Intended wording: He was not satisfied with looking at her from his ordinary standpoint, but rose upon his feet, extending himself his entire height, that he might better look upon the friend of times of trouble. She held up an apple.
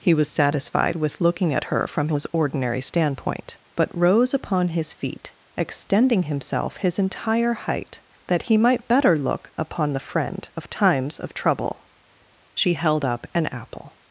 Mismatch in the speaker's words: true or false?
true